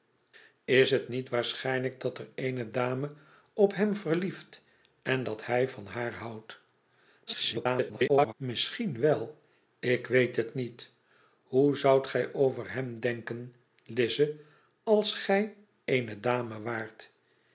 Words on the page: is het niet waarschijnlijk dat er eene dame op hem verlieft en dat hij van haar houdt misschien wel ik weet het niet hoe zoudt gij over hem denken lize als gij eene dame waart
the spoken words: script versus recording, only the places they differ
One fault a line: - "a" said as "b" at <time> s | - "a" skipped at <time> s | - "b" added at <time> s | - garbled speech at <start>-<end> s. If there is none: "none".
- garbled speech at 7.3-8.3 s